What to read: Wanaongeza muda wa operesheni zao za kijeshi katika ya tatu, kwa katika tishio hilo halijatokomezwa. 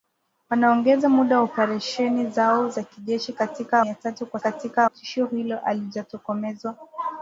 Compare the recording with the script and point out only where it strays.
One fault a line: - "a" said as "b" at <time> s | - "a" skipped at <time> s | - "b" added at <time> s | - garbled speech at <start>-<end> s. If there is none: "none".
none